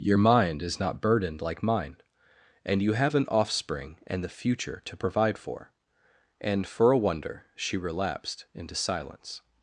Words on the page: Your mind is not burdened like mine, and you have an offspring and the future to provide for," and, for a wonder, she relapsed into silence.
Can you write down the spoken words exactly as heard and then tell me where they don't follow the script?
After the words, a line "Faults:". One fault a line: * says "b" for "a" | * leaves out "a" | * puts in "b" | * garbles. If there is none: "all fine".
Your mind is not burdened like mine, and you have an offspring and the future to provide for," and, for a wonder, she relapsed into silence.
Faults:
all fine